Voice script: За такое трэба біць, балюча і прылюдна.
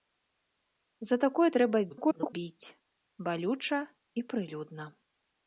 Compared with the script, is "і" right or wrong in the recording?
right